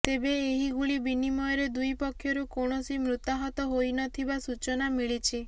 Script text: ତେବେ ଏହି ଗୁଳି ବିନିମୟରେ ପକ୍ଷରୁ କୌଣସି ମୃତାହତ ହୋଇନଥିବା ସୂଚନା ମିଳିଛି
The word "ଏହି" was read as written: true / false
true